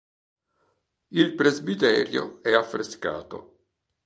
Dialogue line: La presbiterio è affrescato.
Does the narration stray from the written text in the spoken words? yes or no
yes